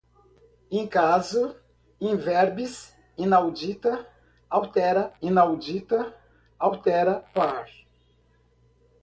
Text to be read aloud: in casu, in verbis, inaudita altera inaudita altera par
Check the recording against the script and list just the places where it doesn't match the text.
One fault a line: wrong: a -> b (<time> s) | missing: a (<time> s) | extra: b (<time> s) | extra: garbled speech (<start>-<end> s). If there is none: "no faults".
no faults